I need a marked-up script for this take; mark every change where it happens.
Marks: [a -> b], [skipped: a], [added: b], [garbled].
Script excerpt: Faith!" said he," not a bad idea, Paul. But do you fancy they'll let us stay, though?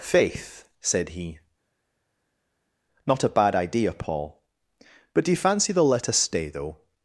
Faith!" said he," not a bad idea, Paul. But do you fancy they'll let us stay, though?